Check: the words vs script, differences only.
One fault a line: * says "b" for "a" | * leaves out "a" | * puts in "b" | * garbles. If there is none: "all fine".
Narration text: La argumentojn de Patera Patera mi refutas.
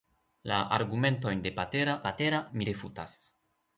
all fine